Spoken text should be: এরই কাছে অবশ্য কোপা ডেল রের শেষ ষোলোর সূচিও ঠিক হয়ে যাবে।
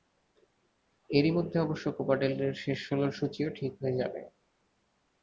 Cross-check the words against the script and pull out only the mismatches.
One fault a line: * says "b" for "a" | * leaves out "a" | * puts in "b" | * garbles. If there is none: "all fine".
* says "মধ্যে" for "কাছে"